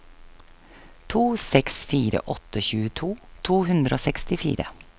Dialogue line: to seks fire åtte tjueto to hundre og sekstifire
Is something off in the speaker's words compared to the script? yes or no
no